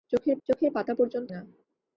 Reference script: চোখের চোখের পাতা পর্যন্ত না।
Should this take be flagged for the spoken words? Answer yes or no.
no